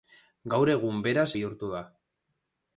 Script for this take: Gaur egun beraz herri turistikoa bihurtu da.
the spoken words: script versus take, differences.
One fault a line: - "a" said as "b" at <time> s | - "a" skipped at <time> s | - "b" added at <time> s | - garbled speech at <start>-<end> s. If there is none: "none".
- "herri turistikoa" skipped at 1.3 s